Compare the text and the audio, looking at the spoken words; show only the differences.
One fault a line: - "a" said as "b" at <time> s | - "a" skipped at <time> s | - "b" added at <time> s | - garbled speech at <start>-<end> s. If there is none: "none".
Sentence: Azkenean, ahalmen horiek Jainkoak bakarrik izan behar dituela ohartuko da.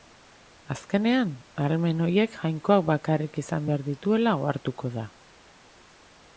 none